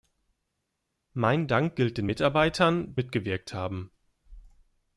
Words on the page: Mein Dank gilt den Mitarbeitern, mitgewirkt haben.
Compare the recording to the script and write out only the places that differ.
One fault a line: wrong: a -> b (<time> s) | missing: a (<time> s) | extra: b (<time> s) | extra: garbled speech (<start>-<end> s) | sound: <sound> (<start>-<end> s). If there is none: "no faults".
no faults